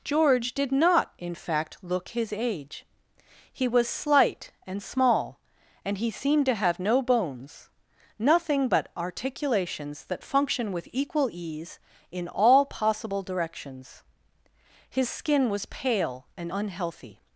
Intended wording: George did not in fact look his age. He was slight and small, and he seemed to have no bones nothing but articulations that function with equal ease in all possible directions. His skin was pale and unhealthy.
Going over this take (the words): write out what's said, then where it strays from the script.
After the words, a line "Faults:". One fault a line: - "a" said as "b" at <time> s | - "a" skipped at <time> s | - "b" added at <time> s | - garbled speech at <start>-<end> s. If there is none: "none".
George did not in fact look his age. He was slight and small, and he seemed to have no bones nothing but articulations that function with equal ease in all possible directions. His skin was pale and unhealthy.
Faults:
none